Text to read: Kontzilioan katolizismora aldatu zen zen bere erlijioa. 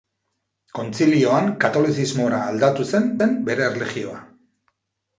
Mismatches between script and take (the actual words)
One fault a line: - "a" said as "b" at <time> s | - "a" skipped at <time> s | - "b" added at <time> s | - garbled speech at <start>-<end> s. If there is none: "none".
none